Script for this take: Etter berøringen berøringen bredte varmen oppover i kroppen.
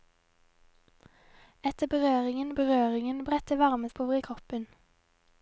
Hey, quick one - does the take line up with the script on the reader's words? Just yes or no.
yes